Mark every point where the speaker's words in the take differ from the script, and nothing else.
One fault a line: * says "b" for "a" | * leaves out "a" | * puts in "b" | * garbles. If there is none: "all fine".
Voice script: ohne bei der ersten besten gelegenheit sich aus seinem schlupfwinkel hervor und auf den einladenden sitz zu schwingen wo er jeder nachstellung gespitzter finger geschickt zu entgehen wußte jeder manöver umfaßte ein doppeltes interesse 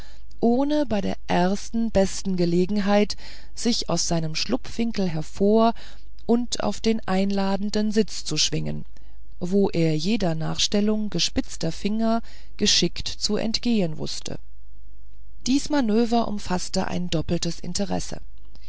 * says "dies" for "jeder"